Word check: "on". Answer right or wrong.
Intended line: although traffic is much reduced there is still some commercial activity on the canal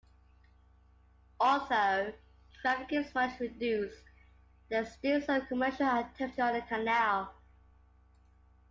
right